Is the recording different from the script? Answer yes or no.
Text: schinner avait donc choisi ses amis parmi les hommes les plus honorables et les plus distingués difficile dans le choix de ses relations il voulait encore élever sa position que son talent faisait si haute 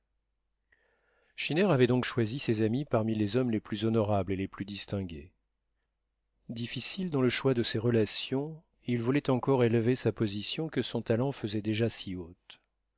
yes